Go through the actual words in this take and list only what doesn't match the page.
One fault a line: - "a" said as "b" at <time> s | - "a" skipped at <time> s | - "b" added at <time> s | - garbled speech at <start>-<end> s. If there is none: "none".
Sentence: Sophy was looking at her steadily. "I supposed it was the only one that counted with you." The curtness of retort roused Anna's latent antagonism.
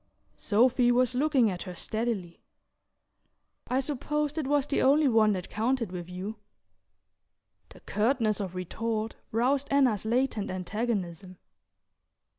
none